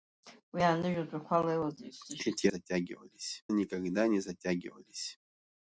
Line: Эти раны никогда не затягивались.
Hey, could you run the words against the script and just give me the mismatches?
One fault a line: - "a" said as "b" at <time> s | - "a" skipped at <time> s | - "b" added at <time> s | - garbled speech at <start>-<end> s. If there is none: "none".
- "раны" said as "затягивались" at 2.5 s